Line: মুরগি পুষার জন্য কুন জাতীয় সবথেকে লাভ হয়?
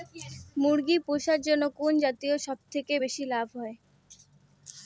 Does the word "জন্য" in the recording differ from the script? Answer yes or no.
no